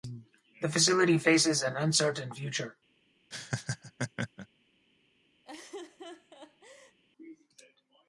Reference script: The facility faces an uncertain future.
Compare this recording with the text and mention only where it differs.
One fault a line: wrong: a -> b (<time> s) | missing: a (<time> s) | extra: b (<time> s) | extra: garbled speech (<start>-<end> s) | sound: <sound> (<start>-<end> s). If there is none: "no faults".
sound: laugh (3.3-4.5 s)
sound: laugh (5.4-7.0 s)